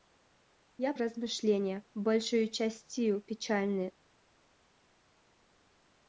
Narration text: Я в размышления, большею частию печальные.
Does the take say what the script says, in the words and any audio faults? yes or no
yes